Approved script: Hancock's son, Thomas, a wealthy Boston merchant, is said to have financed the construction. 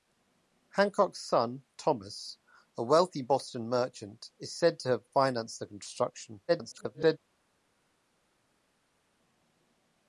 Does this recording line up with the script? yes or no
no